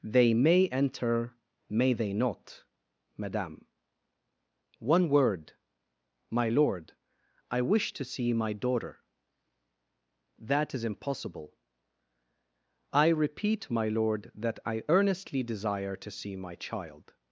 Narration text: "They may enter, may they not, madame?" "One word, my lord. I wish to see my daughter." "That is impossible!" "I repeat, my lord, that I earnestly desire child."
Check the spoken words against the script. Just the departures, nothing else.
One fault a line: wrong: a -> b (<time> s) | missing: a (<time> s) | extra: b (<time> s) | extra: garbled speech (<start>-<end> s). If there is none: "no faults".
extra: to see my (16.0 s)